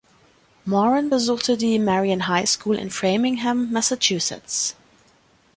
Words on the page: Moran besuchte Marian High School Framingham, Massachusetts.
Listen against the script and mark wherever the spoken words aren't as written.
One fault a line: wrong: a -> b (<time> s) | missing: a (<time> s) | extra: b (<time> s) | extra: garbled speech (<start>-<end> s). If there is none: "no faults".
extra: die (1.6 s)
extra: in (2.8 s)